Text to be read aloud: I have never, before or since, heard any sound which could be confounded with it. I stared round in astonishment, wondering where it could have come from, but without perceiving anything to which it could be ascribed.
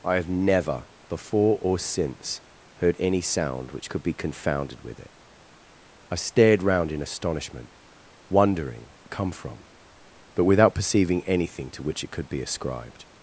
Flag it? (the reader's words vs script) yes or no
yes